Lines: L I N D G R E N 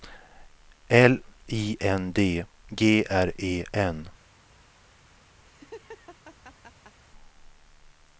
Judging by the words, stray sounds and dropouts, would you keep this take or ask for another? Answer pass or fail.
fail